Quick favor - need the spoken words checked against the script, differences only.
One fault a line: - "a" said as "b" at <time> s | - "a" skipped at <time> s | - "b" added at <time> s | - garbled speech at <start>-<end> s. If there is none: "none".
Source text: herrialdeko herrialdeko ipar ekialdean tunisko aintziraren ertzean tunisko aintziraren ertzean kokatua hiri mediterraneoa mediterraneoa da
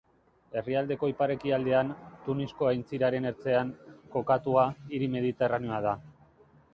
- "herrialdeko" skipped at 1.1 s
- "tunisko aintziraren ertzean" skipped at 3.7 s
- "mediterraneoa" skipped at 5.8 s